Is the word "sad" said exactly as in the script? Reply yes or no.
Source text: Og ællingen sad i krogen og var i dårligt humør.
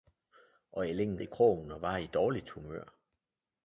no